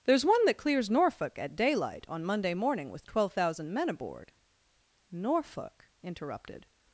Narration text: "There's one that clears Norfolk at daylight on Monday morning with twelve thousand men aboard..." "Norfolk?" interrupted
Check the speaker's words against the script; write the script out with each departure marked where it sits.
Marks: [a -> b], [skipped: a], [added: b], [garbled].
"There's one that clears Norfolk at daylight on Monday morning with twelve thousand men aboard..." "Norfolk?" interrupted